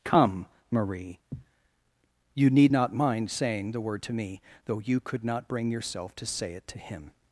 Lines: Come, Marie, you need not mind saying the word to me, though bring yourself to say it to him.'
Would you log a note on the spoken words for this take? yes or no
yes